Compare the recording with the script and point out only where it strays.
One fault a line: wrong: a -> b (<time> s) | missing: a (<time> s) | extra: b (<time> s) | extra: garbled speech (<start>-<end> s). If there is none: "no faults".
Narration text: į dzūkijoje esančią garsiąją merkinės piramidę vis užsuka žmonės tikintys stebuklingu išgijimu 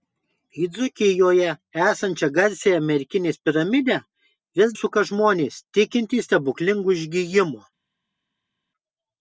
no faults